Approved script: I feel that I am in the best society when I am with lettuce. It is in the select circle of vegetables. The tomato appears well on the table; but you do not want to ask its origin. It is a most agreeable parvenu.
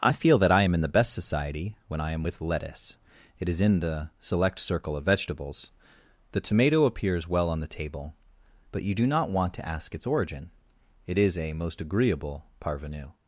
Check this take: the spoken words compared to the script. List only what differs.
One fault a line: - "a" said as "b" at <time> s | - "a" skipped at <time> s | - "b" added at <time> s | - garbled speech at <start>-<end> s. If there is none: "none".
none